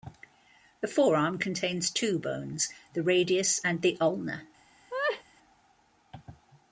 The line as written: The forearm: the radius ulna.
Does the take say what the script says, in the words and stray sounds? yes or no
no